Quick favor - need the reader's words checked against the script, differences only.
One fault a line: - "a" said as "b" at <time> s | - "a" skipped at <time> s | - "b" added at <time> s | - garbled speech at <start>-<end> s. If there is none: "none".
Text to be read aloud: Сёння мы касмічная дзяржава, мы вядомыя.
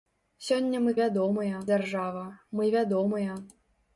- "касмічная" said as "вядомыя" at 1.0 s